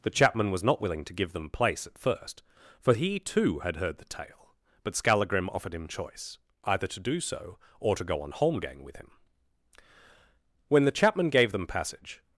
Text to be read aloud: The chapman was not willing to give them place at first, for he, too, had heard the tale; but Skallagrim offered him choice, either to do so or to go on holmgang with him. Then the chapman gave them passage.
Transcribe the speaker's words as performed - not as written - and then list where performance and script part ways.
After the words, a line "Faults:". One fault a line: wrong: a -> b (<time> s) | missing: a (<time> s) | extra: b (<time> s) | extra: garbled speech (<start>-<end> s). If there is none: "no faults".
The chapman was not willing to give them place at first, for he, too, had heard the tale; but Skallagrim offered him choice, either to do so or to go on holmgang with him. When the chapman gave them passage.
Faults:
wrong: Then -> When (10.7 s)